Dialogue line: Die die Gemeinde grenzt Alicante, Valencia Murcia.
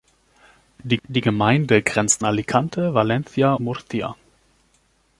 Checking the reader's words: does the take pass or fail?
pass